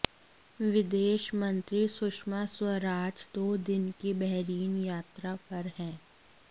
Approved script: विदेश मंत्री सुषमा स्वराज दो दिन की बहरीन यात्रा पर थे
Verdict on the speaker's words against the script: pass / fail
fail